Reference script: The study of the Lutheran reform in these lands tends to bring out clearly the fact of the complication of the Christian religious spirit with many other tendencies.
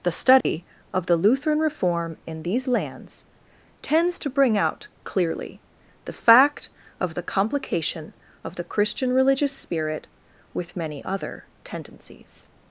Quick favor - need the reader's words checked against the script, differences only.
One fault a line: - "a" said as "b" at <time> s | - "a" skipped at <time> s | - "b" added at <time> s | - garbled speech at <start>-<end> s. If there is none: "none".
none